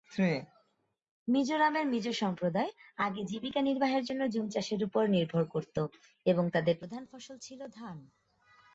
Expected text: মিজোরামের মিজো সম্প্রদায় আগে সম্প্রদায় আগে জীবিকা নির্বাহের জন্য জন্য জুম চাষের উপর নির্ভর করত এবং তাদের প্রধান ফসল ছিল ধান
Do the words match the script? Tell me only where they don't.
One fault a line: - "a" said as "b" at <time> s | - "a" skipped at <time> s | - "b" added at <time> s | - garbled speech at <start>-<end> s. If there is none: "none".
- "সম্প্রদায় আগে" skipped at 3.2 s
- "জন্য" skipped at 4.2 s